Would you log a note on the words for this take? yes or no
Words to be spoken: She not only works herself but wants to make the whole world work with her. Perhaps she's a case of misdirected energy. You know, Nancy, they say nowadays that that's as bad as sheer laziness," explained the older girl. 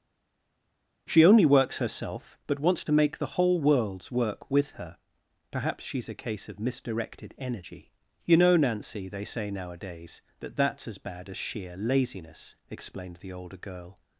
yes